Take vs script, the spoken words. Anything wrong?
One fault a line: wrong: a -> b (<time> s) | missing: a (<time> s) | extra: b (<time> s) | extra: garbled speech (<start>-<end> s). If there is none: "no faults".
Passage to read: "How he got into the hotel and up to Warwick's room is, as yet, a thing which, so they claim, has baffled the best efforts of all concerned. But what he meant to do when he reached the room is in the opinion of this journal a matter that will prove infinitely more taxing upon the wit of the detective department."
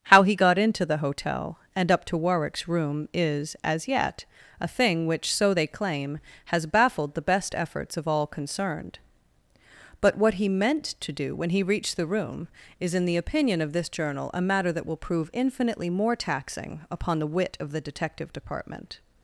no faults